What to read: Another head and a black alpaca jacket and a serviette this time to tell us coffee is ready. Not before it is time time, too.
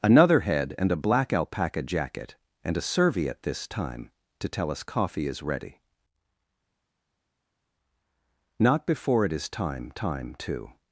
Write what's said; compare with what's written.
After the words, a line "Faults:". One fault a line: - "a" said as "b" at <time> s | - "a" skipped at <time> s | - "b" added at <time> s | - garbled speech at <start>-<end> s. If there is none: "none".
Another head and a black alpaca jacket and a serviette this time to tell us coffee is ready. Not before it is time time, too.
Faults:
none